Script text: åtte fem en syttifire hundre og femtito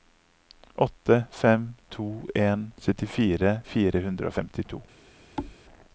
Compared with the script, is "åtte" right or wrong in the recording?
right